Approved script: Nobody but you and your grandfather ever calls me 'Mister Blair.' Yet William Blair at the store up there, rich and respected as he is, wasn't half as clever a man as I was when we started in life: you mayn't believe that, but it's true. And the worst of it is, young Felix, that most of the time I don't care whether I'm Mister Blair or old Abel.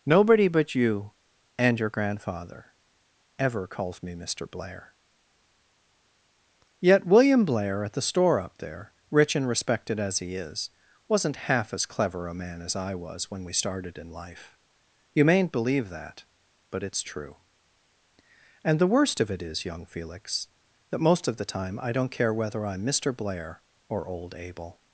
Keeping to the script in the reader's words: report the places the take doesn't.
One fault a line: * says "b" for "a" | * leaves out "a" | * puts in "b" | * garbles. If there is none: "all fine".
all fine